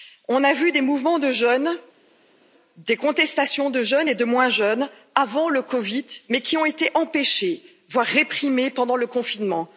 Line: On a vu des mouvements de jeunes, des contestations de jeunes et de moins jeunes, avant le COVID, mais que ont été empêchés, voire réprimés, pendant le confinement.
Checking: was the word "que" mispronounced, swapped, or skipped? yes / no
yes